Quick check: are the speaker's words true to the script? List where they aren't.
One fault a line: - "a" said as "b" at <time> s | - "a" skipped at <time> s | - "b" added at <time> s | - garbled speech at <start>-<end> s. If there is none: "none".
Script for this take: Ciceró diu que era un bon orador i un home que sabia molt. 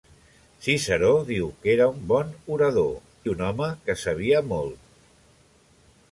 none